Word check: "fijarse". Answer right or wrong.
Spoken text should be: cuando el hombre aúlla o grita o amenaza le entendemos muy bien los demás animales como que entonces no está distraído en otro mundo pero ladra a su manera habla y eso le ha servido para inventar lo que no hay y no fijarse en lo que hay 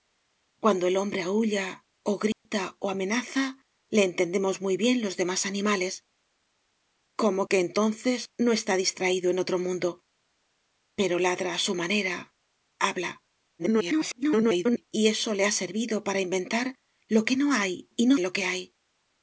wrong